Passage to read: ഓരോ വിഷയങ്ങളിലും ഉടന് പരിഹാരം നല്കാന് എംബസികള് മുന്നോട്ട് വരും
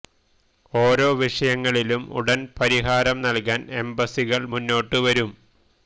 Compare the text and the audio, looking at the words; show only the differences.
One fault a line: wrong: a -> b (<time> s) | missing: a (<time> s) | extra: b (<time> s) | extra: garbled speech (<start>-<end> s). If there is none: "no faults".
no faults